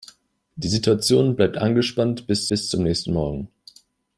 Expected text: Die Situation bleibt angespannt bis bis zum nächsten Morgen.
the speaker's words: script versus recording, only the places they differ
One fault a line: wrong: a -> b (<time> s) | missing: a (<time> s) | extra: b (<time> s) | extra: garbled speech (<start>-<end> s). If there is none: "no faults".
no faults